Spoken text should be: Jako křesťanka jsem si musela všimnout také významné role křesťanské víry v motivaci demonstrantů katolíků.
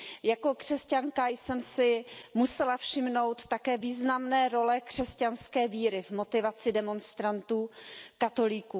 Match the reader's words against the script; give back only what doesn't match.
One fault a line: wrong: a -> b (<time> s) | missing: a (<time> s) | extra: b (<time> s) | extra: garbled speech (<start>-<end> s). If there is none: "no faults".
no faults